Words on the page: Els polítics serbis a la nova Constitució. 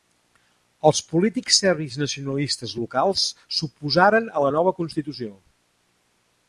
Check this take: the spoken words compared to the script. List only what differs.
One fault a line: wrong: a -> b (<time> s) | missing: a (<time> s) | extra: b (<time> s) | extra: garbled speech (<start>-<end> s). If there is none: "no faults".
extra: nacionalistes locals s'oposaren (2.0 s)